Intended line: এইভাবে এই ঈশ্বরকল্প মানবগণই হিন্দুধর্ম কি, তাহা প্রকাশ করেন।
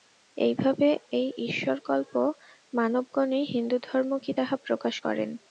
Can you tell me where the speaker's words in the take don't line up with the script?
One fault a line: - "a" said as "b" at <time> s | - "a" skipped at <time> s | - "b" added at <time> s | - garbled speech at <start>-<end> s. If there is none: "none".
none